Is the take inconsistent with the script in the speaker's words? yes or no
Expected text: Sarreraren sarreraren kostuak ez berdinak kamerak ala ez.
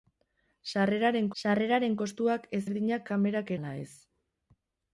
no